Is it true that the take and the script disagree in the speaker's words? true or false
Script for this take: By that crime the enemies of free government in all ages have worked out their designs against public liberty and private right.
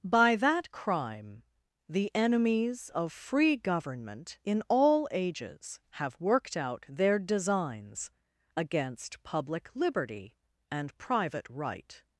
false